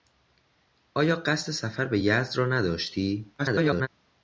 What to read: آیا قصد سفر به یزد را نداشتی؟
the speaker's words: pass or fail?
fail